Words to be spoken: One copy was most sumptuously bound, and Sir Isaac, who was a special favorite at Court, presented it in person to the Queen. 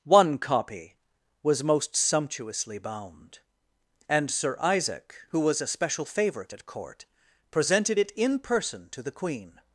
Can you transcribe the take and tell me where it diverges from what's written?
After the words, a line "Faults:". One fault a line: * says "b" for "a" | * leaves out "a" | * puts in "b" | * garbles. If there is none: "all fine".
One copy was most sumptuously bound, and Sir Isaac, who was a special favorite at Court, presented it in person to the Queen.
Faults:
all fine